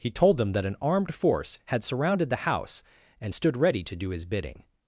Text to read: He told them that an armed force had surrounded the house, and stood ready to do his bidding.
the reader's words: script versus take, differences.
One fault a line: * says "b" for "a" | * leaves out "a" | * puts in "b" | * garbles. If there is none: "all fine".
all fine